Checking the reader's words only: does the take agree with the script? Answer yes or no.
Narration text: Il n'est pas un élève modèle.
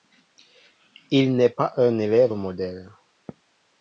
yes